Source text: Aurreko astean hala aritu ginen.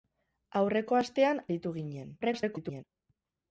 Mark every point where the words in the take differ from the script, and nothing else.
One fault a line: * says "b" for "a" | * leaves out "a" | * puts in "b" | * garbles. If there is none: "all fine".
* leaves out "hala"
* garbles